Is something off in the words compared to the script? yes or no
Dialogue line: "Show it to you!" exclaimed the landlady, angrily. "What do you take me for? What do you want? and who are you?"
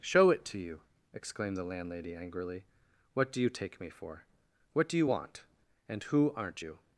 yes